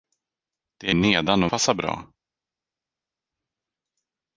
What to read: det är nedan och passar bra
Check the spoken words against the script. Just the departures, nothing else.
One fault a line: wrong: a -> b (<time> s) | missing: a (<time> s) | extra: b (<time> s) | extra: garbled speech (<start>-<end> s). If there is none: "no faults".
no faults